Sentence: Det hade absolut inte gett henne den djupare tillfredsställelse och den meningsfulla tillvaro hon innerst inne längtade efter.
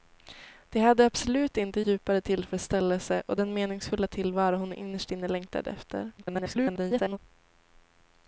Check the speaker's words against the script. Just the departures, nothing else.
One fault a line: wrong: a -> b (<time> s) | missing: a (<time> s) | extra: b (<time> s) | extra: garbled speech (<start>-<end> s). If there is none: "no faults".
missing: gett henne den (1.8 s)
extra: garbled speech (6.2-7.2 s)